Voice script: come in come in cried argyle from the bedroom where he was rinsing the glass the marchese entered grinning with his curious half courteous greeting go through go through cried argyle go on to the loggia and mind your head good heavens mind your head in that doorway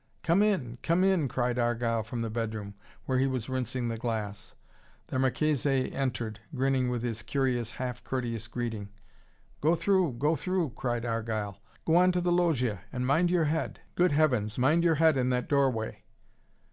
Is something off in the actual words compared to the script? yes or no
no